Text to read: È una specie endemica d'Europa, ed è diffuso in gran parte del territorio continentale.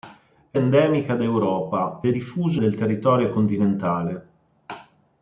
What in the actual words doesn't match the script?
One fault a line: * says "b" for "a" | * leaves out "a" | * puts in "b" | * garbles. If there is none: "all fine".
* leaves out "una specie"
* leaves out "ed"
* leaves out "in gran parte"